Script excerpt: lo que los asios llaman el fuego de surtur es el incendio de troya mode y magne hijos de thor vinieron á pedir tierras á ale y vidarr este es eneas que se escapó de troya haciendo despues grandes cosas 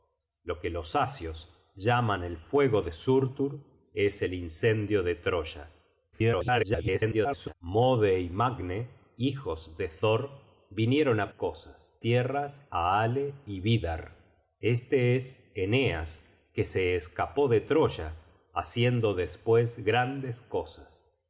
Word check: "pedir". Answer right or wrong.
wrong